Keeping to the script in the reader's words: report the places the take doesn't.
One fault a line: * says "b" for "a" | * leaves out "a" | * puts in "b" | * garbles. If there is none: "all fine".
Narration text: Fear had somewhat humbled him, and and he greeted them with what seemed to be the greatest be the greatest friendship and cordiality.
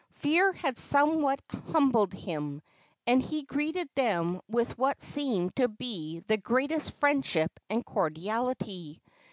* leaves out "and"
* leaves out "be the greatest"